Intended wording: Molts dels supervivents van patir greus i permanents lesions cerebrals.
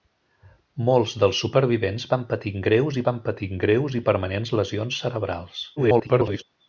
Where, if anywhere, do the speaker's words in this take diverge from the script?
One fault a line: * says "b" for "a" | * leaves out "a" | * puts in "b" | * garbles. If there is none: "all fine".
* puts in "van patir greus"
* garbles